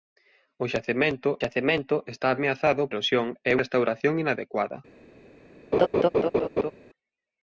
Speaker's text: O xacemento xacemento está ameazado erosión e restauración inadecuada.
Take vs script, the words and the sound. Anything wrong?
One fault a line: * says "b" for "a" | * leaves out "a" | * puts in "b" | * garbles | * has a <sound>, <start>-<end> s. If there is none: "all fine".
* has a laugh, 5.7-6.7 s